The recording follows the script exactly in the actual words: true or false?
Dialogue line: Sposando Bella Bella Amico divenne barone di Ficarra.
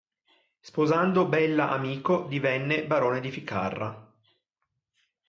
false